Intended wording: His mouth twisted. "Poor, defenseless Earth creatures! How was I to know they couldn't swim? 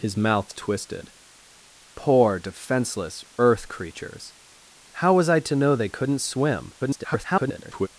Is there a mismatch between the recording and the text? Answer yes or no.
yes